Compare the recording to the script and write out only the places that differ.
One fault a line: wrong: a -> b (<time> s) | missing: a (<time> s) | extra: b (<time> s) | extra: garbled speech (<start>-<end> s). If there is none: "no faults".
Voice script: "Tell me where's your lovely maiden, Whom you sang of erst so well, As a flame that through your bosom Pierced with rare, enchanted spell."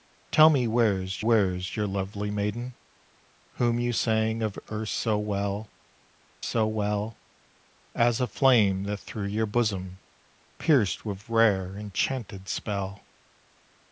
extra: where's (1.2 s)
extra: so well (6.4 s)